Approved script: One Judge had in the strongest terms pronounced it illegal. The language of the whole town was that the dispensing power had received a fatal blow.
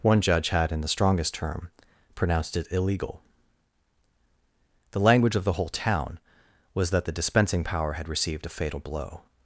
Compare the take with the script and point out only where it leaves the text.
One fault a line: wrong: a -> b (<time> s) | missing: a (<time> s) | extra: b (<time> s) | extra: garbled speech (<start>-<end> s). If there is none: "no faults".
wrong: terms -> term (1.3 s)